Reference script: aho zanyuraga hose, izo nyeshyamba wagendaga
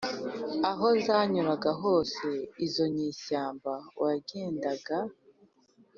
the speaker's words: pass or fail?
pass